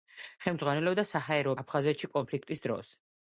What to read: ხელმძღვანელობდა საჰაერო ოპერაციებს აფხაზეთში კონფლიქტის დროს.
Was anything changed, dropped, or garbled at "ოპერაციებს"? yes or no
yes